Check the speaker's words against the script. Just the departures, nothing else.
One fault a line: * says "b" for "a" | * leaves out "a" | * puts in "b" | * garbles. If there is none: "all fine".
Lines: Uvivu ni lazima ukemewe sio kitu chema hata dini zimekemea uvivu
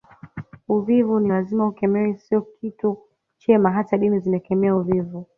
all fine